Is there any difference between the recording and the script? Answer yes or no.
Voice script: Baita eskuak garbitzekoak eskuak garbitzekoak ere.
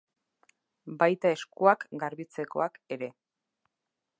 yes